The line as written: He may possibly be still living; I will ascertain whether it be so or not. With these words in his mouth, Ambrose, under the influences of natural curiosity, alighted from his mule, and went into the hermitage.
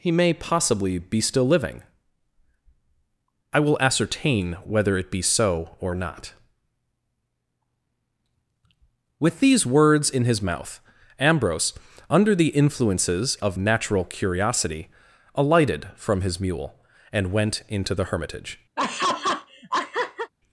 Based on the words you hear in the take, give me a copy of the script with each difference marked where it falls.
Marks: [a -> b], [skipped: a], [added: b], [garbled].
He may possibly be still living; I will ascertain whether it be so or not. With these words in his mouth, Ambrose, under the influences of natural curiosity, alighted from his mule, and went into the hermitage.